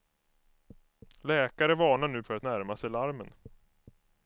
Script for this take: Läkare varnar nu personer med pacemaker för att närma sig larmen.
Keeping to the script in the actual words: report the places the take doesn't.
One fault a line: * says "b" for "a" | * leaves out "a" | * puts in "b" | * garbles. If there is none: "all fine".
* leaves out "personer med pacemaker"